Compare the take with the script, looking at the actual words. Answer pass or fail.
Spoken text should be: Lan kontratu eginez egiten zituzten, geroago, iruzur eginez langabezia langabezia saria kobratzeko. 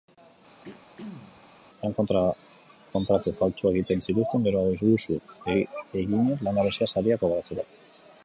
fail